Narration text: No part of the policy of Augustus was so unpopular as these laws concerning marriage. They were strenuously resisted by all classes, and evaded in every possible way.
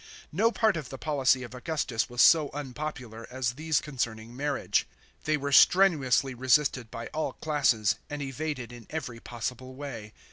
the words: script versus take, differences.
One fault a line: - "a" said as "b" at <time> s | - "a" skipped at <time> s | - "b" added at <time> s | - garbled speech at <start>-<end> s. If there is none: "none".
- "laws" skipped at 3.8 s